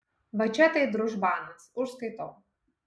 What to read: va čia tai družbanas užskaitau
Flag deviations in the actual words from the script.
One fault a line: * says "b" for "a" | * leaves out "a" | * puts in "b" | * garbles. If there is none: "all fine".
all fine